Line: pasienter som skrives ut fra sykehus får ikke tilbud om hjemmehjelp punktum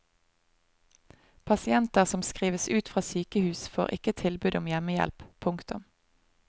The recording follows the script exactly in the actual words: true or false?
true